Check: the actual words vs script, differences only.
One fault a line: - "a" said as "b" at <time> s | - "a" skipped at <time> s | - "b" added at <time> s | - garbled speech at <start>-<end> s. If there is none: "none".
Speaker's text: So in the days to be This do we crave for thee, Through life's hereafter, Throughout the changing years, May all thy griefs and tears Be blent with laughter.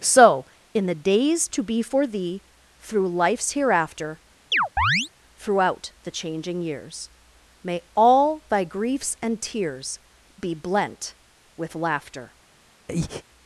- "This do we crave" skipped at 1.8 s